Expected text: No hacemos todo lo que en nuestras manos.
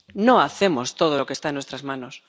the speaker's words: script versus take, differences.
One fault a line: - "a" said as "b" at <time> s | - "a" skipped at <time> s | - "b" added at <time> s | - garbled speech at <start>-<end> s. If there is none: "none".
- "está" added at 1.3 s